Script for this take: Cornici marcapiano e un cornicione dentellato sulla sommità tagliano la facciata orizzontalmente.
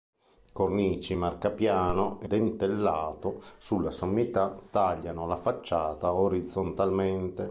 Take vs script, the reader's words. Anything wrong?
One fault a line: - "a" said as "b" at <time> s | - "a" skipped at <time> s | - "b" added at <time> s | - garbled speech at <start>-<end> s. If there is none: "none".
- "un cornicione" skipped at 2.3 s